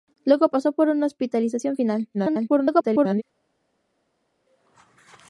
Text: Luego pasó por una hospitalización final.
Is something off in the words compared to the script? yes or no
yes